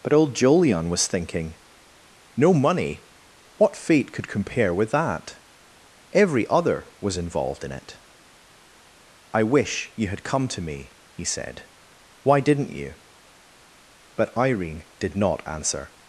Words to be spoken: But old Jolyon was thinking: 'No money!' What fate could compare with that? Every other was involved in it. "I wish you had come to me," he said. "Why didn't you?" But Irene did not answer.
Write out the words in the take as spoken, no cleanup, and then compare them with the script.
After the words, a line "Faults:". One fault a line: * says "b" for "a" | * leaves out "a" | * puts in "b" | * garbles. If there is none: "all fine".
But old Jolyon was thinking: 'No money!' What fate could compare with that? Every other was involved in it. "I wish you had come to me," he said. "Why didn't you?" But Irene did not answer.
Faults:
all fine